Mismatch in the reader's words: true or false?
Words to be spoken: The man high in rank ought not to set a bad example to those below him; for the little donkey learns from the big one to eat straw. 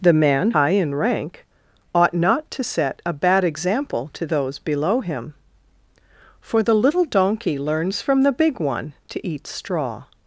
false